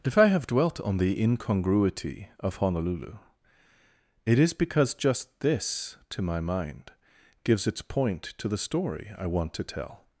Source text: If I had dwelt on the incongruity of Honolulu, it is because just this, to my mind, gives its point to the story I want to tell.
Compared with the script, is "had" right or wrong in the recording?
wrong